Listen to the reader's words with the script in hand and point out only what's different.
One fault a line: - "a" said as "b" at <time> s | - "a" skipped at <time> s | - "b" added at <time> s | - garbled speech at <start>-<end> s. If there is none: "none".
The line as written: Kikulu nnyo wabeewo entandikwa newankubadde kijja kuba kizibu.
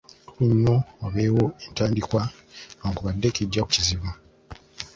- "kuba" skipped at 3.6 s